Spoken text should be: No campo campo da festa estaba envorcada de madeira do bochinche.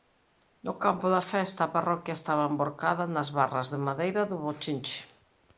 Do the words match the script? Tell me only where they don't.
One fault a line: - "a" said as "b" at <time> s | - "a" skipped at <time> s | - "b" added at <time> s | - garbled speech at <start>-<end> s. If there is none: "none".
- "campo" skipped at 1.1 s
- "a parroquia" added at 1.6 s
- "nas barras" added at 3.1 s